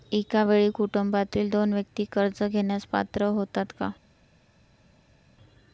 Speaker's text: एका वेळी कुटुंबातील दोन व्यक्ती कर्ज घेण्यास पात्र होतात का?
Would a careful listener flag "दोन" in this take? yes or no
no